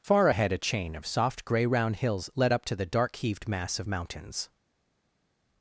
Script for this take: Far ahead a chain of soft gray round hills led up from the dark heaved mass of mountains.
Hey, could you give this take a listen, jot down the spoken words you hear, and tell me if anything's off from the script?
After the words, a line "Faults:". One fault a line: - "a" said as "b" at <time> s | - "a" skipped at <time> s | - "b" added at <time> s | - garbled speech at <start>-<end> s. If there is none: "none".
Far ahead a chain of soft gray round hills led up to the dark heaved mass of mountains.
Faults:
- "from" said as "to" at 2.6 s